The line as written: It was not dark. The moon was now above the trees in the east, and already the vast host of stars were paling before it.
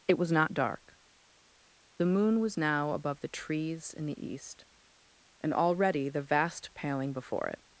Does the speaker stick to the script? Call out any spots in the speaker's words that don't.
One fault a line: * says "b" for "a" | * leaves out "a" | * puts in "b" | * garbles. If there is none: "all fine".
* leaves out "host of stars were"